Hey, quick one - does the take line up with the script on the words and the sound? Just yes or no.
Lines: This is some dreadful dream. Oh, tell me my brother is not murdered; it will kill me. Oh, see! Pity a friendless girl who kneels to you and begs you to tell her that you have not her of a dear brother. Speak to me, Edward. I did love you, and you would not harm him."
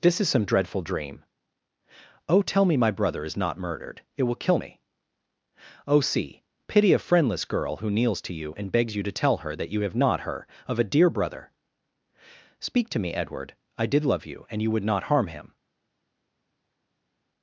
yes